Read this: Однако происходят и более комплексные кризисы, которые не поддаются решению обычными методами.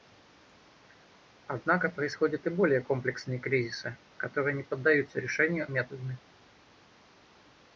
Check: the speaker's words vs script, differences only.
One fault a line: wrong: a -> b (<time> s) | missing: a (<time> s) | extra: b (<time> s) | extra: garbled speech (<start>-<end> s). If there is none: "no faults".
missing: обычными (5.7 s)